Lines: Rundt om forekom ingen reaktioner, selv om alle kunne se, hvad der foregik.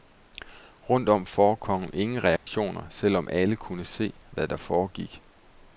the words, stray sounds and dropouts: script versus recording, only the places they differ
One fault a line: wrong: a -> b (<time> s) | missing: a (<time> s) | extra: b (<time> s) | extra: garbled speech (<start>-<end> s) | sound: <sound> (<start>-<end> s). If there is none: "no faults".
sound: dropout (2.4-2.5 s)